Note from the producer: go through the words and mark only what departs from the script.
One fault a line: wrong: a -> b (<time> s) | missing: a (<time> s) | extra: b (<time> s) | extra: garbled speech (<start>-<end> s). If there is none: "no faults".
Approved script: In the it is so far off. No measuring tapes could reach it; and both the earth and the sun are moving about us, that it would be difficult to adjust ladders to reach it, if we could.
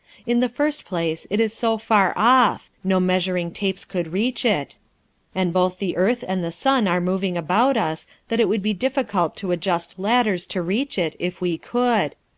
extra: first place (0.5 s)